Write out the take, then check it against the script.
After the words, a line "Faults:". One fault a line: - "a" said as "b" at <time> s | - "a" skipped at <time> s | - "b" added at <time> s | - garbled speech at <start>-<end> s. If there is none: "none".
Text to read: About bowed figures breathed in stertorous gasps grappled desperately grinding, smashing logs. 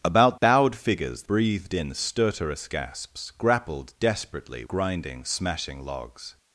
About bowed figures breathed in stertorous gasps grappled desperately grinding, smashing logs.
Faults:
none